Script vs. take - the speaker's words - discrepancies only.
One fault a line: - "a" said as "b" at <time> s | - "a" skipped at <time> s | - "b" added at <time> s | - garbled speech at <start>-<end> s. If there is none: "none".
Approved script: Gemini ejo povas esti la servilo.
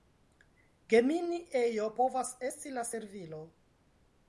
none